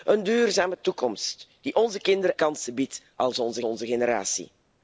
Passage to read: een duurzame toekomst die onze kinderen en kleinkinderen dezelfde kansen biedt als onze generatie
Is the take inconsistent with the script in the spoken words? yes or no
yes